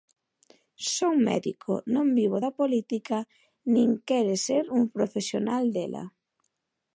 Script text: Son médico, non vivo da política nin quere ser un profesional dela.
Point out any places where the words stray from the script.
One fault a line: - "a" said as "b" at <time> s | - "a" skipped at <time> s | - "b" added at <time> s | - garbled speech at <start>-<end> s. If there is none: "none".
none